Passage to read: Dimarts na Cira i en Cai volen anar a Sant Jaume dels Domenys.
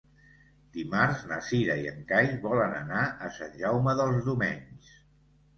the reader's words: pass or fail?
pass